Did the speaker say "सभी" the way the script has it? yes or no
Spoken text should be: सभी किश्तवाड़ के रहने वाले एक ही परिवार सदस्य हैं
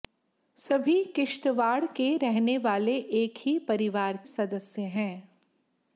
yes